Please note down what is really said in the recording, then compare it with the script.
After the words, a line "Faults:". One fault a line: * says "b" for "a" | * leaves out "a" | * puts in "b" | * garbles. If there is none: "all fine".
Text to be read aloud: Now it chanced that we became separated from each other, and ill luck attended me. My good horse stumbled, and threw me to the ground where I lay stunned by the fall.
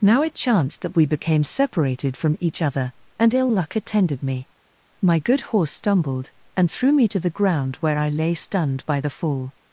Now it chanced that we became separated from each other, and ill luck attended me. My good horse stumbled, and threw me to the ground where I lay stunned by the fall.
Faults:
all fine